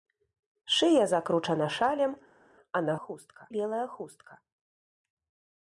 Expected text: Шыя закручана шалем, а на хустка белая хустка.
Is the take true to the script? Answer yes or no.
yes